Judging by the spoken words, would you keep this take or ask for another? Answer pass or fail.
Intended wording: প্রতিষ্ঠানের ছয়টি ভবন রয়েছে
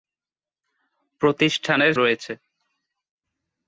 fail